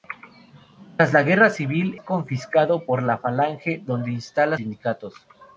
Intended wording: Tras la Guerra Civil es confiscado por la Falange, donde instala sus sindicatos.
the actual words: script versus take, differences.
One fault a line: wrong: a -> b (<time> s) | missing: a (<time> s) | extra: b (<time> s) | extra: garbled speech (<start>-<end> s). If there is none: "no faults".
missing: es (2.0 s)
missing: sus (4.6 s)